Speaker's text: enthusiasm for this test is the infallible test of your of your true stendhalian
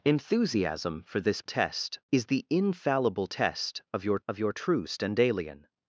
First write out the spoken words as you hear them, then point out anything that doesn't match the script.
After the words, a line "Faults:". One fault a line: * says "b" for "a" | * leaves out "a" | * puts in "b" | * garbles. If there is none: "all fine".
enthusiasm for this test is the infallible test of your of your true stendhalian
Faults:
all fine